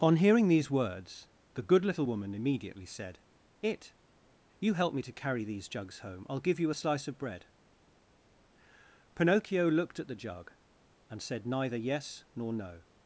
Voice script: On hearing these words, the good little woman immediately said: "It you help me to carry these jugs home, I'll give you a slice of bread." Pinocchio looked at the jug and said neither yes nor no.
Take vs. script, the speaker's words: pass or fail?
pass